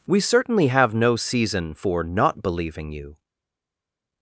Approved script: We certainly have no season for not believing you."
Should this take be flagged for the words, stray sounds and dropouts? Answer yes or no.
no